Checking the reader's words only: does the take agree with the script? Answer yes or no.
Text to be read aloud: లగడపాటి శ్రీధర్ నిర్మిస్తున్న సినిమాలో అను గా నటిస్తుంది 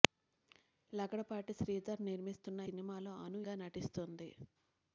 yes